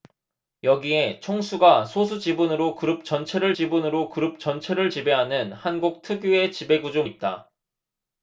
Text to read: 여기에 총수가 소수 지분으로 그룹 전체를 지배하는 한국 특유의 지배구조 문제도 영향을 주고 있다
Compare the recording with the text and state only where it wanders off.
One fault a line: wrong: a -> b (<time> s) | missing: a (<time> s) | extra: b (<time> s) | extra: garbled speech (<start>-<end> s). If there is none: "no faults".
extra: 지분으로 그룹 전체를 (3.5 s)
missing: 문제도 영향을 주고 (7.0 s)